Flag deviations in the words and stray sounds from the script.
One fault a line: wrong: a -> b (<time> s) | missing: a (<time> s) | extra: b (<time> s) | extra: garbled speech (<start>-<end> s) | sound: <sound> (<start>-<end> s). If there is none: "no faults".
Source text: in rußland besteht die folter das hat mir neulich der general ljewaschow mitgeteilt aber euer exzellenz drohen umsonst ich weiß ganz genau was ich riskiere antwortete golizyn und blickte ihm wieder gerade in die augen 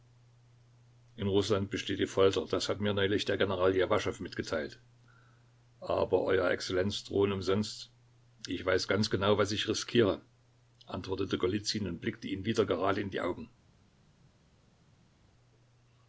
no faults